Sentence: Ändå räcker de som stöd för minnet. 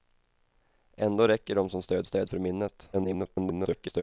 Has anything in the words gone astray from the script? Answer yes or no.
yes